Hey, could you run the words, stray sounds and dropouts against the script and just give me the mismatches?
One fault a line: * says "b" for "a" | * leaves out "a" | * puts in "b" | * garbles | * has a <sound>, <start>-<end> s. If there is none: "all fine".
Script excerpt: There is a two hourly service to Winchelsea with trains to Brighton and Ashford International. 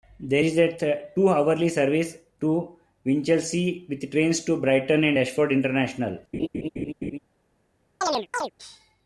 * has a laugh, 6.3-7.2 s
* has a chirp, 8.0-8.5 s